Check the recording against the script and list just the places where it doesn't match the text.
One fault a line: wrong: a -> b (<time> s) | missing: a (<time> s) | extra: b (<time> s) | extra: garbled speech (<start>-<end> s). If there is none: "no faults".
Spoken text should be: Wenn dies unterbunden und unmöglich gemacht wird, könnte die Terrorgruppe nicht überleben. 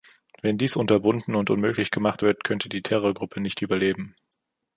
no faults